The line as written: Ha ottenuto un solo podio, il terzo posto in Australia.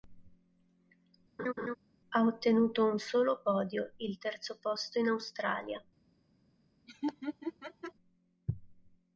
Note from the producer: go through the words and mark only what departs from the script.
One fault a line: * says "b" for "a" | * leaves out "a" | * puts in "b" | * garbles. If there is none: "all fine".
all fine